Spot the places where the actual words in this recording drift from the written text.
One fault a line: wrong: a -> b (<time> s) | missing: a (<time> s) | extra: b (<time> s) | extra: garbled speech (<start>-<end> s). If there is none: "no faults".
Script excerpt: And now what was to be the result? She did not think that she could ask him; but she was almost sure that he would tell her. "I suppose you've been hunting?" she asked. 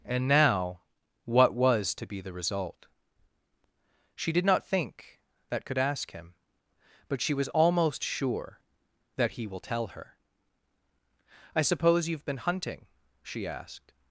missing: she (5.7 s)
wrong: would -> will (9.5 s)